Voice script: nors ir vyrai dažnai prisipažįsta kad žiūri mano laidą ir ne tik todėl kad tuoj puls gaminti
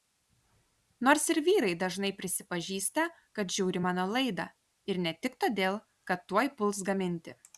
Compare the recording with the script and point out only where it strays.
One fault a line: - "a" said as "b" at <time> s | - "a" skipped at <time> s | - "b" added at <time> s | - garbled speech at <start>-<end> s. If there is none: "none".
none